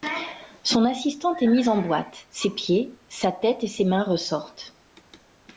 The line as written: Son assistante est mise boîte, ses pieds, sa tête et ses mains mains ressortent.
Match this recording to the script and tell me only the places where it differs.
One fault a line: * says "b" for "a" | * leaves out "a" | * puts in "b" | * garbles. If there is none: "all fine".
* puts in "en"
* leaves out "mains"